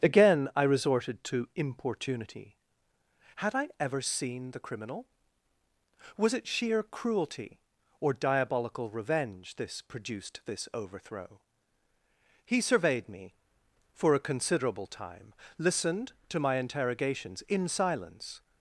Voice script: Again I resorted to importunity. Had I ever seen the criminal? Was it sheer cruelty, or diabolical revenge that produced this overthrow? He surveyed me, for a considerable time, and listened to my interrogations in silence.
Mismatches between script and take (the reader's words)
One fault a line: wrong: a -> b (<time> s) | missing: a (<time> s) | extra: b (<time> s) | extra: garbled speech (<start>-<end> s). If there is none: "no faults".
wrong: that -> this (9.5 s)
missing: and (15.3 s)